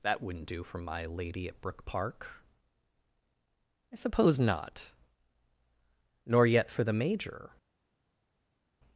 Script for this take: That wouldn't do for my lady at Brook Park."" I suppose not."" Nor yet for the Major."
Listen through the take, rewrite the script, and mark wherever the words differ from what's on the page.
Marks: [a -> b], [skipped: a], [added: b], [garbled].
That wouldn't do for my lady at Brook Park."" I suppose not."" Nor yet for the Major."